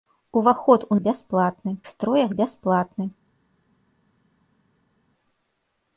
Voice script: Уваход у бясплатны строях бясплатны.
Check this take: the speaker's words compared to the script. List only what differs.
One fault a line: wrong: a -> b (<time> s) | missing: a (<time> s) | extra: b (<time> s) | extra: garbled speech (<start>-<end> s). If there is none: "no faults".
no faults